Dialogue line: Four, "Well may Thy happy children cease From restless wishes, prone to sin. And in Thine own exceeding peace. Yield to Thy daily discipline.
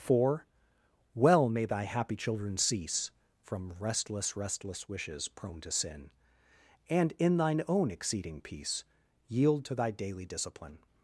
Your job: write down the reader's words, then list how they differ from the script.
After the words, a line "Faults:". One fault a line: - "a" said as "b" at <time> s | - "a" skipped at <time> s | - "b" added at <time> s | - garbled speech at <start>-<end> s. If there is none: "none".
Four, "Well may Thy happy children cease From restless restless wishes, prone to sin. And in Thine own exceeding peace. Yield to Thy daily discipline.
Faults:
- "restless" added at 4.3 s